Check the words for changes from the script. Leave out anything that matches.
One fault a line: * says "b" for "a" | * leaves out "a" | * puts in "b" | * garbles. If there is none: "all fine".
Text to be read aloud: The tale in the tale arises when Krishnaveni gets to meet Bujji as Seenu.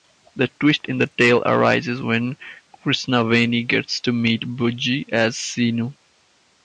* says "twist" for "tale"